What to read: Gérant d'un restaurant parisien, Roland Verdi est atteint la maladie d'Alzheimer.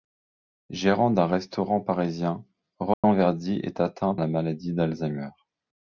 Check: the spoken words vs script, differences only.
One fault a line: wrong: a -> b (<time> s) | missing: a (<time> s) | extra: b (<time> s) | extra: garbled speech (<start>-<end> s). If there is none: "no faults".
no faults